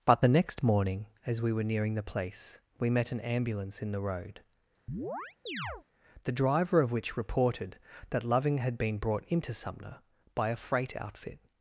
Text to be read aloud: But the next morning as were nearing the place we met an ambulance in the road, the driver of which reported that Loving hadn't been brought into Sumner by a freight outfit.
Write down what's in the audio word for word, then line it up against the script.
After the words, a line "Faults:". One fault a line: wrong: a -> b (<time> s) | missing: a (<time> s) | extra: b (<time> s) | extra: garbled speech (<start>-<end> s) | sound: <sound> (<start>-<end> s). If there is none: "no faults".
But the next morning as we were nearing the place we met an ambulance in the road, the driver of which reported that Loving had been brought into Sumner by a freight outfit.
Faults:
extra: we (1.4 s)
sound: chirp (4.9-5.8 s)
wrong: hadn't -> had (8.6 s)